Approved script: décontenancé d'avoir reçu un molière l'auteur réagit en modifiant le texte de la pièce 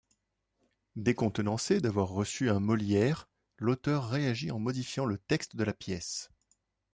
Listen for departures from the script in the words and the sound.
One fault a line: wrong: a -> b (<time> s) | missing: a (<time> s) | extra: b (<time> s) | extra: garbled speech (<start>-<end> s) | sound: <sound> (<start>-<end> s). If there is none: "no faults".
no faults